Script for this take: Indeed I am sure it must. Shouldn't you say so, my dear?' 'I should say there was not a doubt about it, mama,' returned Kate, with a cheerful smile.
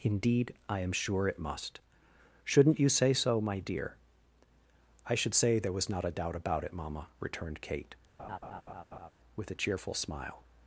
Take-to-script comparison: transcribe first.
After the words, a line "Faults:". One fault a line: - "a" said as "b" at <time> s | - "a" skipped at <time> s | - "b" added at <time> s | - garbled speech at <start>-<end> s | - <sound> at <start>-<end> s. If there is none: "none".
Indeed I am sure it must. Shouldn't you say so, my dear?' 'I should say there was not a doubt about it, mama,' returned Kate, with a cheerful smile.
Faults:
- laugh at 8.2-9.1 s